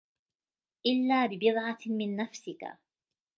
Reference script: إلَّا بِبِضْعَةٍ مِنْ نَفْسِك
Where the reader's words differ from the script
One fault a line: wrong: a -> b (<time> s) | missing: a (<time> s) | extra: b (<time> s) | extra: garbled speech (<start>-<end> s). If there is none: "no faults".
no faults